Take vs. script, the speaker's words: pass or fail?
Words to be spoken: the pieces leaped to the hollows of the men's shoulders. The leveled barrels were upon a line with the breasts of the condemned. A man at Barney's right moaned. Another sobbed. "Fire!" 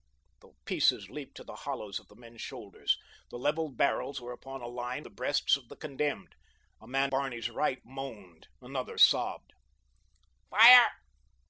fail